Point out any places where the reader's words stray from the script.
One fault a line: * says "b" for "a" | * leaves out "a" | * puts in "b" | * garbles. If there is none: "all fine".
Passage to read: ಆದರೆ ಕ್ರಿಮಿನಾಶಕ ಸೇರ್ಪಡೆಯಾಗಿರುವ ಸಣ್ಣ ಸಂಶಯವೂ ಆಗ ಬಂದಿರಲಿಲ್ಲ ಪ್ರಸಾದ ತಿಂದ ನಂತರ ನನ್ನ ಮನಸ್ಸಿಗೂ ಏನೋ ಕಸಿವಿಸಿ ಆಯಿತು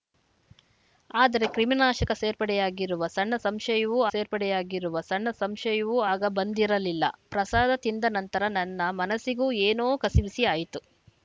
* puts in "ಸೇರ್ಪಡೆಯಾಗಿರುವ ಸಣ್ಣ ಸಂಶಯವೂ"